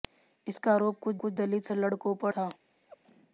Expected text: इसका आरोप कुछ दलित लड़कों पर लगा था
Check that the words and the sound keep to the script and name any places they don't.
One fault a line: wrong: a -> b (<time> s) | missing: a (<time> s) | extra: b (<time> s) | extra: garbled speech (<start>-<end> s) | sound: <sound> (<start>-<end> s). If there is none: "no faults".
extra: कुछ (1.2 s)
missing: लगा (2.3 s)
sound: laugh (2.9-3.0 s)